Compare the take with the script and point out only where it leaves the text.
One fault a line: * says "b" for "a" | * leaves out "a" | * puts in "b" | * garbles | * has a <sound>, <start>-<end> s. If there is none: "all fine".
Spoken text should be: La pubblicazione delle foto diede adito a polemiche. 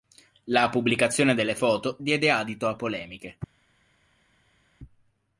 all fine